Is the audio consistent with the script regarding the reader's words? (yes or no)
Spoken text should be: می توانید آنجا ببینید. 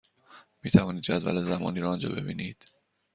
no